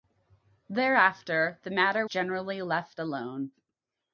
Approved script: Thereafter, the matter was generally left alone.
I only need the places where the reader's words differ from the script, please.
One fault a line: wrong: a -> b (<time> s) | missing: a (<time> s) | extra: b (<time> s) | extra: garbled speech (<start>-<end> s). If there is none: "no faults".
missing: was (2.1 s)